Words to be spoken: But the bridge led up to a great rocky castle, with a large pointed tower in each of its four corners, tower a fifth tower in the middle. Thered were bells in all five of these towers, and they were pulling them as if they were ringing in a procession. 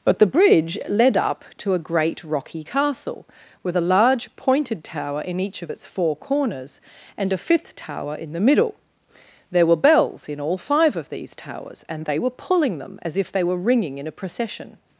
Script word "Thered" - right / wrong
wrong